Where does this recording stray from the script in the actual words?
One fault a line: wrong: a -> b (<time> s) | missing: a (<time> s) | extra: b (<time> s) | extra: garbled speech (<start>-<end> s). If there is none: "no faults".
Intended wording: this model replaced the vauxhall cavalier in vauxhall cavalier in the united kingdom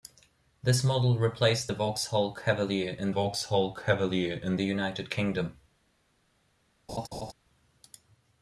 no faults